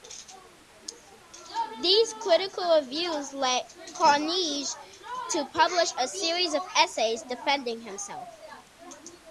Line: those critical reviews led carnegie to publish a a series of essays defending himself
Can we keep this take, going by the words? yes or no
no